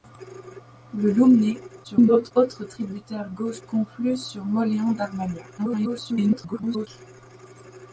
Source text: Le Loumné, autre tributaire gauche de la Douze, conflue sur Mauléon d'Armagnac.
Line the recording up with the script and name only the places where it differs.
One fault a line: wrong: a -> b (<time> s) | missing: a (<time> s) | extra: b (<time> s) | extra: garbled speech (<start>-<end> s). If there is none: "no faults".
extra: garbled speech (1.8-2.3 s)
missing: de la Douze (3.6 s)
extra: garbled speech (5.6-6.9 s)